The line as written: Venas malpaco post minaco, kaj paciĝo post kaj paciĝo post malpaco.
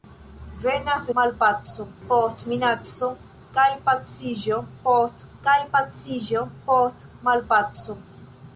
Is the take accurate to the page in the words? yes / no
yes